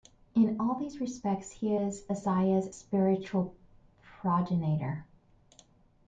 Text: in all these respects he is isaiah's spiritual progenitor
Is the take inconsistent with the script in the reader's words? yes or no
no